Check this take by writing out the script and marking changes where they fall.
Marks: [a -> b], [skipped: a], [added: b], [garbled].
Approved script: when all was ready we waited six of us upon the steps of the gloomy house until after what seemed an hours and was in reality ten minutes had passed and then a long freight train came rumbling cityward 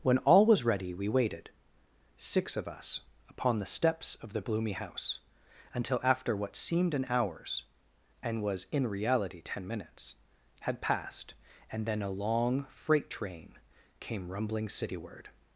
when all was ready we waited six of us upon the steps of the gloomy house until after what seemed an hours and was in reality ten minutes had passed and then a long freight train came rumbling cityward